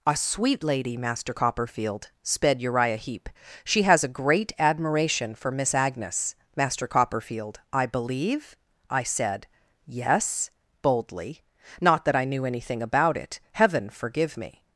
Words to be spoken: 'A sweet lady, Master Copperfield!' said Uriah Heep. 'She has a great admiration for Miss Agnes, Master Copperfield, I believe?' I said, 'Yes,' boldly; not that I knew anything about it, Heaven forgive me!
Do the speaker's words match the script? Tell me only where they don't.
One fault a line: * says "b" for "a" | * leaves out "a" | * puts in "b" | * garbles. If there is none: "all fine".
* says "sped" for "said"